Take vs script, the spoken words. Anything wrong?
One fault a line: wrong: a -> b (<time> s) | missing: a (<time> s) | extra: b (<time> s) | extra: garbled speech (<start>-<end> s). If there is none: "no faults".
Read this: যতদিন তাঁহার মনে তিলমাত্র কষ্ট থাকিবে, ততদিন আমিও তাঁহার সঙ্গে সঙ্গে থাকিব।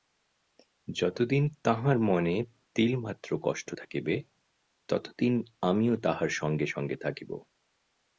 no faults